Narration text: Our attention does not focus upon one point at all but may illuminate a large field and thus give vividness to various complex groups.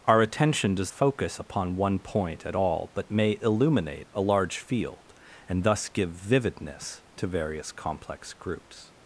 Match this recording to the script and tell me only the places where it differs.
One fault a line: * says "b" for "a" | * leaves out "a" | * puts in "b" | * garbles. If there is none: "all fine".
* leaves out "not"